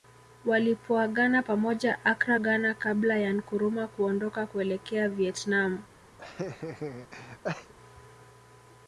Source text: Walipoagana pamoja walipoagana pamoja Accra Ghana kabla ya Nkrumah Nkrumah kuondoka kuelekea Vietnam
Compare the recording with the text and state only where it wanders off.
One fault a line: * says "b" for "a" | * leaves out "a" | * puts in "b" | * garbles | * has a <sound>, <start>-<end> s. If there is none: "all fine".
* leaves out "walipoagana pamoja"
* leaves out "Nkrumah"
* has a laugh, 6.2-7.7 s